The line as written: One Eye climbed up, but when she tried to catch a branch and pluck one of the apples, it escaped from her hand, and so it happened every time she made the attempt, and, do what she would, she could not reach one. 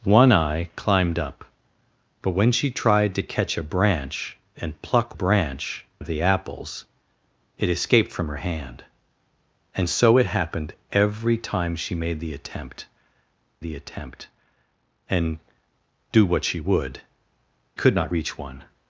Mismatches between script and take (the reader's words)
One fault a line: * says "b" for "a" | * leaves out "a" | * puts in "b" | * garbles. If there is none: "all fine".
* says "branch" for "one"
* puts in "the attempt"
* leaves out "she"